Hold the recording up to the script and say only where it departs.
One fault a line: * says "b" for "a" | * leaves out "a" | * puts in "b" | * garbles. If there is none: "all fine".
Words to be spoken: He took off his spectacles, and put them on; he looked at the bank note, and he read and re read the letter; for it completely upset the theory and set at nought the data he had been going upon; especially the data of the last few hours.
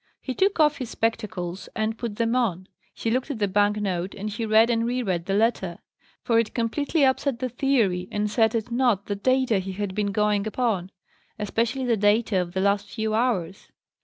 all fine